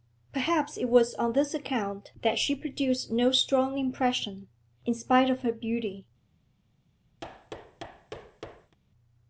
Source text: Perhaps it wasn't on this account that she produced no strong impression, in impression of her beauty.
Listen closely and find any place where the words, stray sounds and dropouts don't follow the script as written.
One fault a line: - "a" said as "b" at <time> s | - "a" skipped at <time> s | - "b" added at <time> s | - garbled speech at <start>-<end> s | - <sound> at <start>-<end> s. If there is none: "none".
- "wasn't" said as "was" at 0.9 s
- "impression" said as "spite" at 5.0 s
- thud at 7.2-8.8 s